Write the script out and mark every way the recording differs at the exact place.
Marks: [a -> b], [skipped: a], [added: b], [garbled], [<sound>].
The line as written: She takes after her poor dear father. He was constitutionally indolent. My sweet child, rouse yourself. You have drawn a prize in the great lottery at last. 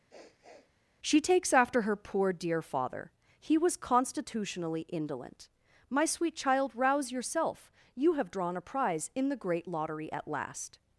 [sniff] She takes after her poor dear father. He was constitutionally indolent. My sweet child, rouse yourself. You have drawn a prize in the great lottery at last.